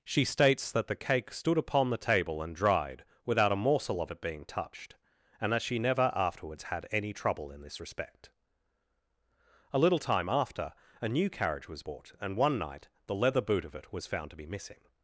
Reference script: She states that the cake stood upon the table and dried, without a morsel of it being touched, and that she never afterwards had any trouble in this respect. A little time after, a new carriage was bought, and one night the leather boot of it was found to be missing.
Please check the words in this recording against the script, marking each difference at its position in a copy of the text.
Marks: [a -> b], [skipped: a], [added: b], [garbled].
She states that the cake stood upon the table and dried, without a morsel of it being touched, and that she never afterwards had any trouble in this respect. A little time after, a new carriage was bought, and one night the leather boot of it was found to be missing.